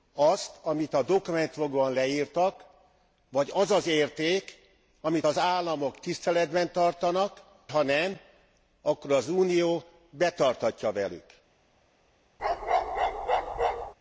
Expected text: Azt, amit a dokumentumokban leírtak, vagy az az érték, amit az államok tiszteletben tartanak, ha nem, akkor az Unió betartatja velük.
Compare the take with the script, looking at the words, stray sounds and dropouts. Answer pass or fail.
fail